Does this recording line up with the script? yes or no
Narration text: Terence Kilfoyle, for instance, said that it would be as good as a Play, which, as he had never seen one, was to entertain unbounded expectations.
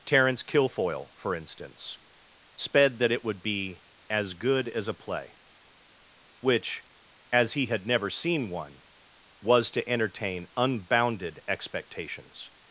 no